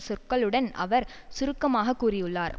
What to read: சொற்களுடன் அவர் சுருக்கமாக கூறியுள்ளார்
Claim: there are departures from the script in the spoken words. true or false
false